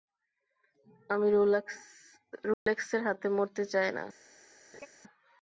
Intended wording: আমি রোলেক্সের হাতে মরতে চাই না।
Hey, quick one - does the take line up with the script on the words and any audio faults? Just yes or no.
no